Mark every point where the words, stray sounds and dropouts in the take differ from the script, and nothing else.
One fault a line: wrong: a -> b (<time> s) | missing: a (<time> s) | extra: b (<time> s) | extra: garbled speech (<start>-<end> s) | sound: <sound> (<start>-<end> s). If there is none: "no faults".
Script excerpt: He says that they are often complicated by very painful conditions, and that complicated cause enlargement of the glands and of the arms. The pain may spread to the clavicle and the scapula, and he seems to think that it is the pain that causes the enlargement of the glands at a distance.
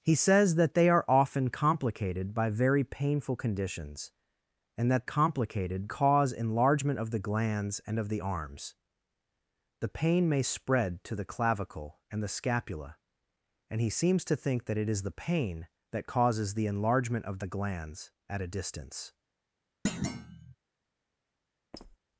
sound: thud (19.9-20.6 s)
sound: squeak (21.7-22.0 s)